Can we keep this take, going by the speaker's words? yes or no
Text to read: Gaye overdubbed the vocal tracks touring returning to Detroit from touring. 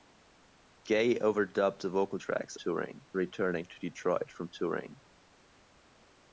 yes